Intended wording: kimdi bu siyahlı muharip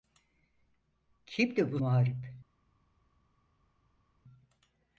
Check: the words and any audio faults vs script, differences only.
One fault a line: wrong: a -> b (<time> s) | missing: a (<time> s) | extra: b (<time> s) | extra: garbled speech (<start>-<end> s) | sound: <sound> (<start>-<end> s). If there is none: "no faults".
missing: siyahlı (1.8 s)